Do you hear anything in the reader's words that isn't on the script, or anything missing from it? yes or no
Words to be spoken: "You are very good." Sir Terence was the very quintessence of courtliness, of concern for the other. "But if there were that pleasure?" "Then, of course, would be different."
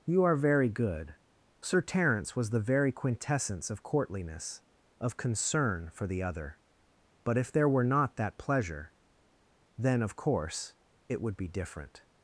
yes